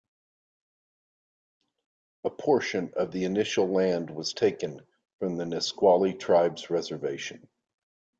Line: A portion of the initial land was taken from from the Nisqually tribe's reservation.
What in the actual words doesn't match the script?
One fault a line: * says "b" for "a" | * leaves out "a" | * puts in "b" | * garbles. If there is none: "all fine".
* leaves out "from"